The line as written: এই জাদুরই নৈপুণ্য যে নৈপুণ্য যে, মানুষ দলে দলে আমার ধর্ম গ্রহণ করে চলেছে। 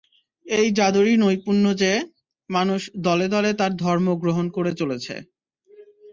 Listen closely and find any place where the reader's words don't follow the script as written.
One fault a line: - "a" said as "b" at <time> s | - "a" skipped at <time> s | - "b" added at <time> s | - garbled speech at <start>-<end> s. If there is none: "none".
- "নৈপুণ্য যে" skipped at 1.9 s
- "আমার" said as "তার" at 3.5 s